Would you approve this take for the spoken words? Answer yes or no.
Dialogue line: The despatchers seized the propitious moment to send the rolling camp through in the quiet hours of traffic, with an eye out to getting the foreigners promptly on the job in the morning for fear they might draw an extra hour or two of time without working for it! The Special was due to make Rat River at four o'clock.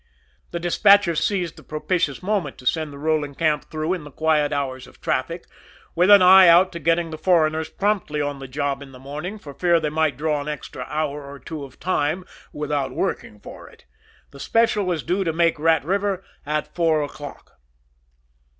yes